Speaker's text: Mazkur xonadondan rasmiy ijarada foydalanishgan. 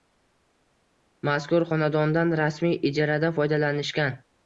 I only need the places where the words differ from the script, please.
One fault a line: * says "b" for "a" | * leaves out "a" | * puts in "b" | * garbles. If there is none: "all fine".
all fine